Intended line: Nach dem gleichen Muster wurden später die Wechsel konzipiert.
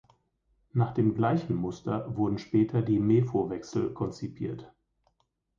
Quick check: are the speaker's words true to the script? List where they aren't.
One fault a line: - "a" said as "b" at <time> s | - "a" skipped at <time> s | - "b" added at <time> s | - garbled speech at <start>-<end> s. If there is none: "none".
- "Mefo" added at 3.0 s